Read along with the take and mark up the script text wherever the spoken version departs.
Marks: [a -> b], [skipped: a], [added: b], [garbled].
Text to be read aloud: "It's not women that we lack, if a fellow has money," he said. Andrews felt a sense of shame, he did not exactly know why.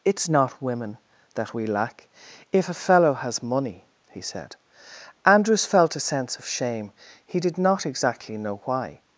"It's not women that we lack, if a fellow has money," he said. Andrews felt a sense of shame, he did not exactly know why.